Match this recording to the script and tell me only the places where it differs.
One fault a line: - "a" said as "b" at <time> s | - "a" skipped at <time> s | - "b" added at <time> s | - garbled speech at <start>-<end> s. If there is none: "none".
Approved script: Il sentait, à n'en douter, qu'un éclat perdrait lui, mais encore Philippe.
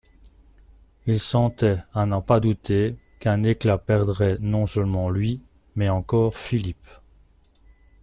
- "pas" added at 2.2 s
- "non seulement" added at 4.4 s